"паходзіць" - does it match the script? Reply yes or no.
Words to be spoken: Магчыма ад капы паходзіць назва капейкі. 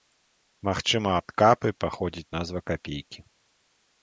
yes